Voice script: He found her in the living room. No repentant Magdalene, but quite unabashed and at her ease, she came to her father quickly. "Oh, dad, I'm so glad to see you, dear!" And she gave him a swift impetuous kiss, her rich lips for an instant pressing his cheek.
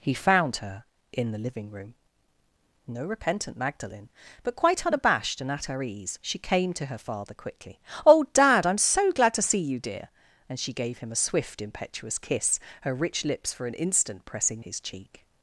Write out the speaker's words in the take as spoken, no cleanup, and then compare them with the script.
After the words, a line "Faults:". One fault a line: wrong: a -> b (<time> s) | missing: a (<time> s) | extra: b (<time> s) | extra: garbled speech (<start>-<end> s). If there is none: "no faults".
He found her in the living room. No repentant Magdalene, but quite unabashed and at her ease, she came to her father quickly. "Oh, dad, I'm so glad to see you, dear!" And she gave him a swift impetuous kiss, her rich lips for an instant pressing his cheek.
Faults:
no faults